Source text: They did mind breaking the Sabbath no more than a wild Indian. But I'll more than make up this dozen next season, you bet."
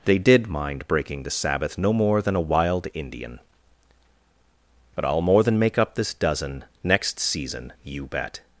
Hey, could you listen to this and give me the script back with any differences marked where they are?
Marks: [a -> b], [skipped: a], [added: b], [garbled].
They did mind breaking the Sabbath no more than a wild Indian. But I'll more than make up this dozen next season, you bet."